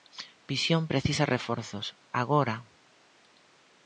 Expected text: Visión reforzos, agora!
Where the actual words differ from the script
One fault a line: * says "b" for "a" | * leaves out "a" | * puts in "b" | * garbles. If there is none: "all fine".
* puts in "precisa"